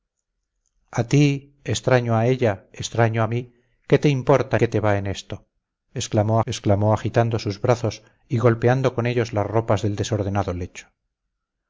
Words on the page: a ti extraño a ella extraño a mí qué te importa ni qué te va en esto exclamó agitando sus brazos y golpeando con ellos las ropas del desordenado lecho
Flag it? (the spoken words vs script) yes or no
yes